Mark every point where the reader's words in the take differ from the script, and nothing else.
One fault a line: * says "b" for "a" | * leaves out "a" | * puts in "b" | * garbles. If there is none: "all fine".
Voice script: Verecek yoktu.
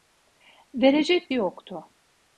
all fine